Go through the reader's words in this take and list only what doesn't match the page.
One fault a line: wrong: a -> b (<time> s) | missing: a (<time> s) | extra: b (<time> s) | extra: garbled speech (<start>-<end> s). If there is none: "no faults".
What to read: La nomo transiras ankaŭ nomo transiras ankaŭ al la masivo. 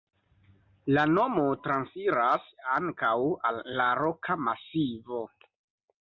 missing: nomo transiras ankaŭ (3.1 s)
extra: roka (4.0 s)